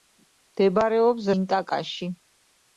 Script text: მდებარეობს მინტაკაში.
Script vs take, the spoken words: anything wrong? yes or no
no